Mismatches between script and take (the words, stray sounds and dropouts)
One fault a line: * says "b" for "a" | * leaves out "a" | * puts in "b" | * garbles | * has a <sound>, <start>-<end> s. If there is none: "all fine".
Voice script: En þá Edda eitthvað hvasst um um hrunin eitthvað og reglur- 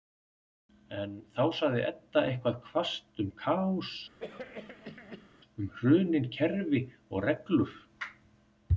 * puts in "sagði"
* puts in "kaos"
* has a cough, 4.2-5.3 s
* says "kerfi" for "eitthvað"